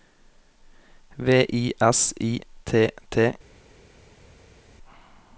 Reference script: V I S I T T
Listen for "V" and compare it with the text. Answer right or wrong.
right